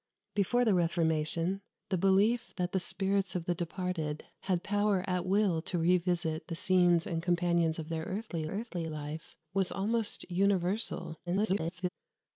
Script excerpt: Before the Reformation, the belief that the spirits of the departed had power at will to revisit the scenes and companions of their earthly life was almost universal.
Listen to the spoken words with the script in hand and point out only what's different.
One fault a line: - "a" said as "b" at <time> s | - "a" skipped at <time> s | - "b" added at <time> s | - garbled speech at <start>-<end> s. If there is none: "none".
- "earthly" added at 8.5 s
- garbled speech at 11.3-11.9 s